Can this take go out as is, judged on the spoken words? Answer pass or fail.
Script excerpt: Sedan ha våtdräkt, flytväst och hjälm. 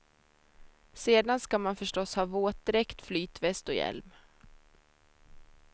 fail